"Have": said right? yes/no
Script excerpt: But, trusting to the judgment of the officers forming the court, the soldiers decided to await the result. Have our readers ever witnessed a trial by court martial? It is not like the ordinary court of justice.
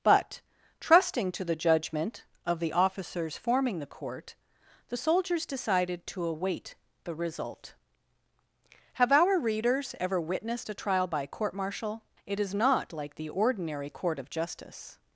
yes